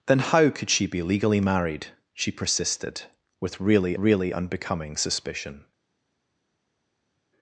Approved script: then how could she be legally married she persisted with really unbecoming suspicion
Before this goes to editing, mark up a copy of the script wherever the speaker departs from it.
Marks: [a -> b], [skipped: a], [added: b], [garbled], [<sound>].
then how could she be legally married she persisted with really [added: really] unbecoming suspicion